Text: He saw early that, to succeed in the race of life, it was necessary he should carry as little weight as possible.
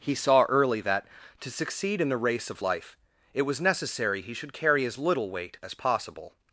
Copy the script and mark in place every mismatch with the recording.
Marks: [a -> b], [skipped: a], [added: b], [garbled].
He saw early that, to succeed in the race of life, it was necessary he should carry as little weight as possible.